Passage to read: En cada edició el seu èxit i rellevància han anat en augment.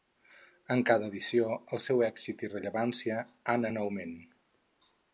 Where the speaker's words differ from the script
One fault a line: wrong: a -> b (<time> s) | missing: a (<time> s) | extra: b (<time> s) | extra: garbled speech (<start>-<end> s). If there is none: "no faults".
missing: anat (3.7 s)